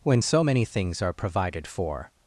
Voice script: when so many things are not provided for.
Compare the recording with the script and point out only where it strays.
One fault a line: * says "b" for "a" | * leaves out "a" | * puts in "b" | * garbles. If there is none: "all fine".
* leaves out "not"